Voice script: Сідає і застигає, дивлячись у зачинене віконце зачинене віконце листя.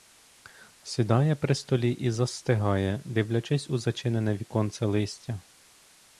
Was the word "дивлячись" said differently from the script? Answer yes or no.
no